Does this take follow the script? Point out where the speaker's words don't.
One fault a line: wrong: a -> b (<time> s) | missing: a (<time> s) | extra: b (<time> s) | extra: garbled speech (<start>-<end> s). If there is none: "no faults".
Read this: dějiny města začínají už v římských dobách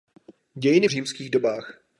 missing: města začínají už (0.9 s)